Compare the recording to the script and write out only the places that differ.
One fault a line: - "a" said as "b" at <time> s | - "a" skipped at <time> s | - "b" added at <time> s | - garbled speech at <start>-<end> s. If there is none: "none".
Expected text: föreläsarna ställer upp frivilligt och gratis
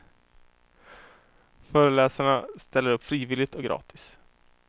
none